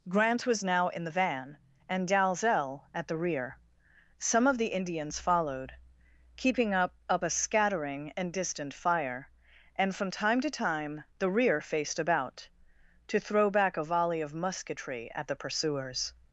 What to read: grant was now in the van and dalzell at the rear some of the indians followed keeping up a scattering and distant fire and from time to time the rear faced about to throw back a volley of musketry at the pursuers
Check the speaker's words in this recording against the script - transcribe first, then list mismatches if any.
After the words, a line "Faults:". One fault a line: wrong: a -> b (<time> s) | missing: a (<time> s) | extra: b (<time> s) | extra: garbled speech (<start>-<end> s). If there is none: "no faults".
grant was now in the van and dalzell at the rear some of the indians followed keeping up up a scattering and distant fire and from time to time the rear faced about to throw back a volley of musketry at the pursuers
Faults:
extra: up (7.1 s)